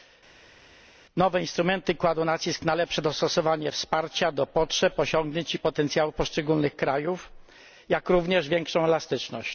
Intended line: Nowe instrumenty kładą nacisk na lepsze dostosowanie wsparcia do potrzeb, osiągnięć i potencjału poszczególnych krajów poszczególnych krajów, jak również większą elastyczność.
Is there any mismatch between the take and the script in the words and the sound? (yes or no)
yes